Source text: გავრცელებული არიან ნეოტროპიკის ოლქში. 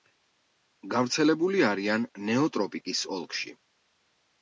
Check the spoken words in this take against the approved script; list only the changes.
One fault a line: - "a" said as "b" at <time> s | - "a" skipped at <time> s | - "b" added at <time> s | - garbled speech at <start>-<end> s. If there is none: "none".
none